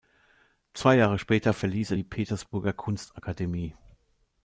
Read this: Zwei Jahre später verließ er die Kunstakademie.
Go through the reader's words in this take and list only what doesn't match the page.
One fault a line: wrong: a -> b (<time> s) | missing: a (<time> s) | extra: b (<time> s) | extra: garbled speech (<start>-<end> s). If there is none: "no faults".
extra: Petersburger (2.0 s)